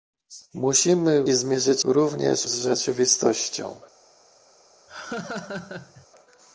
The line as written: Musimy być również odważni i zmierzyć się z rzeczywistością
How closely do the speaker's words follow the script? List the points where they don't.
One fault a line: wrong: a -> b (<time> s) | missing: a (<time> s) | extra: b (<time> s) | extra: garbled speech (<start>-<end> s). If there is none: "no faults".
missing: być również odważni (1.2 s)
wrong: się -> również (1.8 s)